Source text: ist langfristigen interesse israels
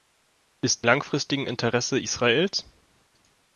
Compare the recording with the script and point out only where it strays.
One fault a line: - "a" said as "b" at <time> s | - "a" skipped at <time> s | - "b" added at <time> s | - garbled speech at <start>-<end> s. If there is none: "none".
none